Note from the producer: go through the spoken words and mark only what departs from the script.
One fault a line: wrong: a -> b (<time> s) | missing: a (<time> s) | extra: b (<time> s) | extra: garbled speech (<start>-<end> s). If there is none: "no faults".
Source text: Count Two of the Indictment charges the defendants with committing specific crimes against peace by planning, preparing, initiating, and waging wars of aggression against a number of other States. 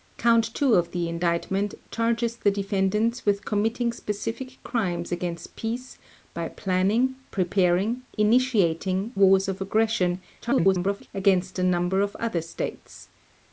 missing: and waging (9.1 s)
extra: garbled speech (10.4-11.1 s)